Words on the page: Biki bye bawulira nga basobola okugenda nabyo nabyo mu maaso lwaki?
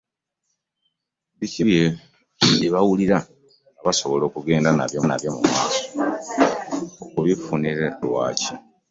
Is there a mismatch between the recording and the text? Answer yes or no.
no